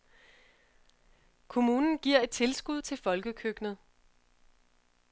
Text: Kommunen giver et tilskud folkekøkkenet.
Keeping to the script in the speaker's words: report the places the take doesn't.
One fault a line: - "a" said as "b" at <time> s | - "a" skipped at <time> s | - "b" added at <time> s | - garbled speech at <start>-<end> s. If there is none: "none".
- "til" added at 2.8 s